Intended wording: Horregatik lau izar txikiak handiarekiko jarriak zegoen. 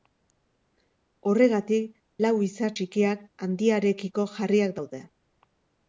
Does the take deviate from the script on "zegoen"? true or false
true